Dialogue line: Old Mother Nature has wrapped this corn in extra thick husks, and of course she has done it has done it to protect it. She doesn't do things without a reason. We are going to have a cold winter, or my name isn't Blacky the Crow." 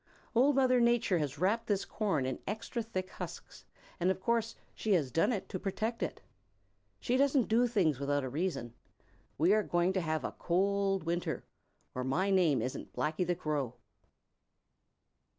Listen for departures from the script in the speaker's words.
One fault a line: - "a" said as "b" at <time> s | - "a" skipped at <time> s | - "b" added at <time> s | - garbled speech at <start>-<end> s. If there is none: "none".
- "has done it" skipped at 5.5 s